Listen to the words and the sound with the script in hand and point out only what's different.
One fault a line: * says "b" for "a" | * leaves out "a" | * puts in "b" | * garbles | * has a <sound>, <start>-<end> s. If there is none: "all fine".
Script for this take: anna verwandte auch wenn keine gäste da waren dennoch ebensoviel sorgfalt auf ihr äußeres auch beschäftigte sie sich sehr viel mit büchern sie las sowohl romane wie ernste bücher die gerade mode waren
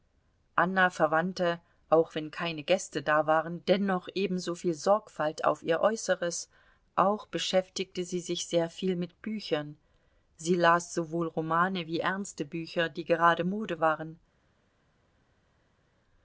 all fine